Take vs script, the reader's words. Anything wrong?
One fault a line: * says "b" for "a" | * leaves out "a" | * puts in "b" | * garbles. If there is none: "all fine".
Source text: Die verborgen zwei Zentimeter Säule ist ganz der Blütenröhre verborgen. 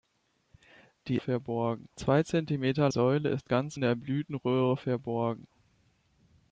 all fine